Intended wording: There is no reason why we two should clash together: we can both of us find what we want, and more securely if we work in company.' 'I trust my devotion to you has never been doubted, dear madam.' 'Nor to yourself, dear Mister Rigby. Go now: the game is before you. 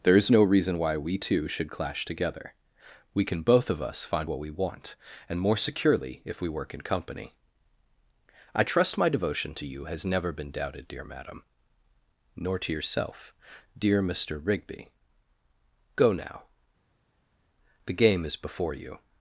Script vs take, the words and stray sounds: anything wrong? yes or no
no